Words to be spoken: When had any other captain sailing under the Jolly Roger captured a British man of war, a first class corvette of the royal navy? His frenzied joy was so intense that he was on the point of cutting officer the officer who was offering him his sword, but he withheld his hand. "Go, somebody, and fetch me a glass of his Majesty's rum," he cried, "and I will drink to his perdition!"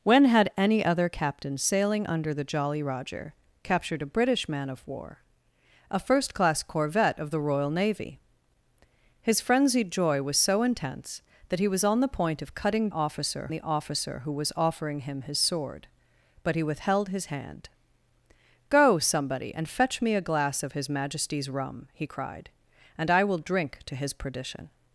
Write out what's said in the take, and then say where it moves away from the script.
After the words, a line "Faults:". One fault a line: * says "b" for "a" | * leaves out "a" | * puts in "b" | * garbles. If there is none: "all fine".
When had any other captain sailing under the Jolly Roger captured a British man of war, a first class corvette of the royal navy? His frenzied joy was so intense that he was on the point of cutting officer the officer who was offering him his sword, but he withheld his hand. "Go, somebody, and fetch me a glass of his Majesty's rum," he cried, "and I will drink to his perdition!"
Faults:
all fine